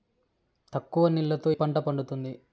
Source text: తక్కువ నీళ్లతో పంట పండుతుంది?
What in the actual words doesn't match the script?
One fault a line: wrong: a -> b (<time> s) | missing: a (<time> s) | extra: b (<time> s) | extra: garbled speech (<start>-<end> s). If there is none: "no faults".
no faults